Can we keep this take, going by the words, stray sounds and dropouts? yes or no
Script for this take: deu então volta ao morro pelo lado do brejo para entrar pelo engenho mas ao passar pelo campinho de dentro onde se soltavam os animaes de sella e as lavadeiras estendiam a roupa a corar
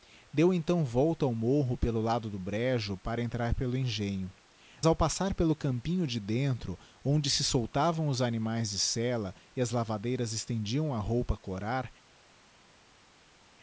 no